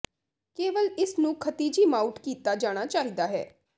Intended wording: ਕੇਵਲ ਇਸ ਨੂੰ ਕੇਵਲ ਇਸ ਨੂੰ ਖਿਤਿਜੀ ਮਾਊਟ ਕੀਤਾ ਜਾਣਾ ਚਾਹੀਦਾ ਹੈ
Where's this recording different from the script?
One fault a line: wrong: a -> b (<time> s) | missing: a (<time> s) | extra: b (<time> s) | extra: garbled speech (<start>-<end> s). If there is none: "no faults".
missing: ਕੇਵਲ ਇਸ ਨੂੰ (1.3 s)